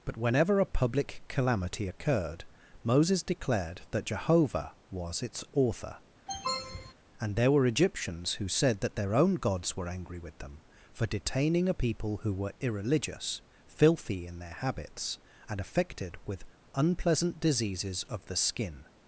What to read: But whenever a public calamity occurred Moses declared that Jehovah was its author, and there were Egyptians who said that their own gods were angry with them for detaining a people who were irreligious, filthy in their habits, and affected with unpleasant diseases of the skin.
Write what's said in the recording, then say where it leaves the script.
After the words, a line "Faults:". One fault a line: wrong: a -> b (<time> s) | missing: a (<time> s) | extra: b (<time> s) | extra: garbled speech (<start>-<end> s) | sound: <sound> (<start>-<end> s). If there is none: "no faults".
But whenever a public calamity occurred Moses declared that Jehovah was its author, and there were Egyptians who said that their own gods were angry with them for detaining a people who were irreligious, filthy in their habits, and affected with unpleasant diseases of the skin.
Faults:
sound: sniff (6.3-6.9 s)